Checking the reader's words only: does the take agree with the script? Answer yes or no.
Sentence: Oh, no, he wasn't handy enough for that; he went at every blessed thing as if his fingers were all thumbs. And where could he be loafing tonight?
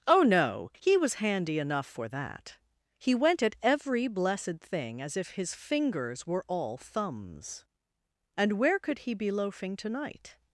no